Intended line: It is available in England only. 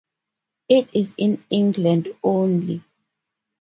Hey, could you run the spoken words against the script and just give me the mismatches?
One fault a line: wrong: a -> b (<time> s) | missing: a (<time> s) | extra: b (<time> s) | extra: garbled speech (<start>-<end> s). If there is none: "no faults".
missing: available (1.1 s)